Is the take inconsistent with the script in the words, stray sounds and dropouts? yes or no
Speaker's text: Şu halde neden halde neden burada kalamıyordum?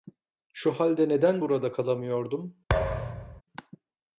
yes